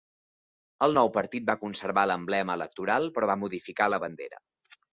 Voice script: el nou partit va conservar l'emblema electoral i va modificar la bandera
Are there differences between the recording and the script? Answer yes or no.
yes